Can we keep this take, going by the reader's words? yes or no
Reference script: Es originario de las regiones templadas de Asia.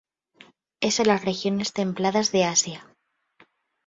no